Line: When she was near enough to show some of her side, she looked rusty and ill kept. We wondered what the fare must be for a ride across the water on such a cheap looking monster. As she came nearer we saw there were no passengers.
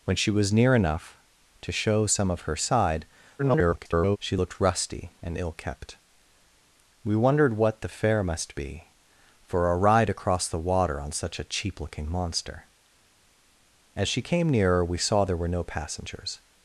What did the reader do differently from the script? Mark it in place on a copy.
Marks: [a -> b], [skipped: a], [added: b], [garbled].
When she was near enough to show some of her side, [garbled] she looked rusty and ill kept. We wondered what the fare must be for a ride across the water on such a cheap looking monster. As she came nearer we saw there were no passengers.